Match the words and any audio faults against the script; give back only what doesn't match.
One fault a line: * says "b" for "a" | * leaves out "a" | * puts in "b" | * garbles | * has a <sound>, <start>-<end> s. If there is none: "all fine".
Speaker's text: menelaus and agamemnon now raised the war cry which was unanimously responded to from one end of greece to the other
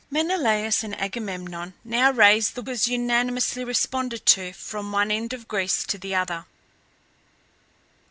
* leaves out "war cry which"